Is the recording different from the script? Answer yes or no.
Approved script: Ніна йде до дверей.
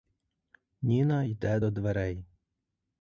no